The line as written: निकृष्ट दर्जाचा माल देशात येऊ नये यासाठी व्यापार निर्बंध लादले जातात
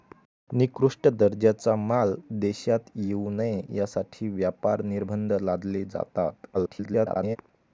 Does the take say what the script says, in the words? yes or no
no